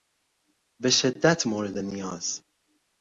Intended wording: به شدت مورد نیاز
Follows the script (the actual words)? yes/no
yes